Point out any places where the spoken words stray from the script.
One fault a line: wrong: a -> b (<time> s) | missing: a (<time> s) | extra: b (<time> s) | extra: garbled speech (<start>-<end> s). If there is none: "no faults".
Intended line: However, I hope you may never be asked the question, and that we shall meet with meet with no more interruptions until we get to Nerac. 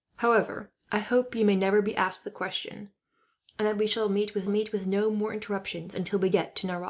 no faults